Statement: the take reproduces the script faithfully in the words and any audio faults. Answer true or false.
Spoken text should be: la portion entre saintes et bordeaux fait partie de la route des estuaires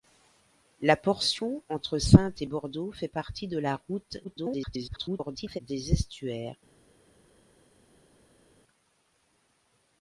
false